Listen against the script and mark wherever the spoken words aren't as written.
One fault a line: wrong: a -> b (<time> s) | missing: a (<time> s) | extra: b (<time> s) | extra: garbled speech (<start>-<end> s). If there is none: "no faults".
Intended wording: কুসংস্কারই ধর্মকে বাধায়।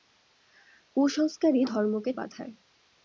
no faults